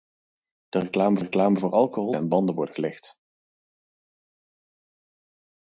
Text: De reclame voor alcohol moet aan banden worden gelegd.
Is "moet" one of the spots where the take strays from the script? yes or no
yes